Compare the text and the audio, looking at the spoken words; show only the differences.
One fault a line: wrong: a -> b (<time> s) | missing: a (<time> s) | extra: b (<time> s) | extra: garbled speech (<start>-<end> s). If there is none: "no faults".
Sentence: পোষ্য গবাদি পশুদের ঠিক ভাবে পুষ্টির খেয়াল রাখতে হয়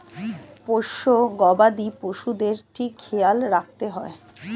missing: ভাবে পুষ্টির (2.9 s)